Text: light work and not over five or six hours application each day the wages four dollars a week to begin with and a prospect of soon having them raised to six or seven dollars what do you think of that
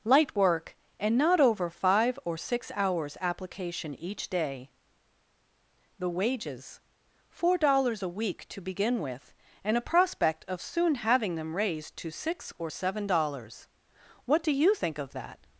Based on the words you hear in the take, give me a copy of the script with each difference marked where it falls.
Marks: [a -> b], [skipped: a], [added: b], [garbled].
light work and not over five or six hours application each day the wages four dollars a week to begin with and a prospect of soon having them raised to six or seven dollars what do you think of that